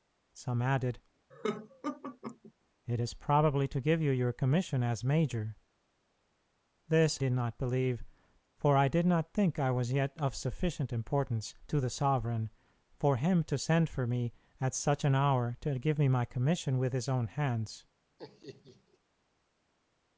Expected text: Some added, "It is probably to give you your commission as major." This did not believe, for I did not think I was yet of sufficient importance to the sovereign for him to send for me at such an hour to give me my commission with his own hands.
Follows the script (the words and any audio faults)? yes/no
no